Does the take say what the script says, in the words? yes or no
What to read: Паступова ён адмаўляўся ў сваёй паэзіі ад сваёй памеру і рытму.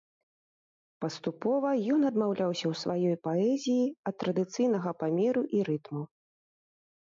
no